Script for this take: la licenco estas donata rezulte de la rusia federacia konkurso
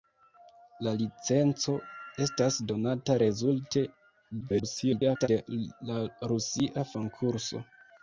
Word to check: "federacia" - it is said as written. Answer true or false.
false